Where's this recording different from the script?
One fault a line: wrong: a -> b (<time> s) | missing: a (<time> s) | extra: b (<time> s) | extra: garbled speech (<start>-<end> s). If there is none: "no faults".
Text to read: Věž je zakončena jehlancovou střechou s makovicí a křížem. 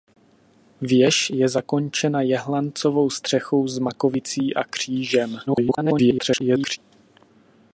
extra: garbled speech (5.5-6.8 s)